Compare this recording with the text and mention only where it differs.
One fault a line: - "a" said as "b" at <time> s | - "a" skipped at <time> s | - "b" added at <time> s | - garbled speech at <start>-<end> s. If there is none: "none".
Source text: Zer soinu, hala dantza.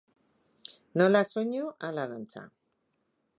- "Zer" said as "Nola" at 1.0 s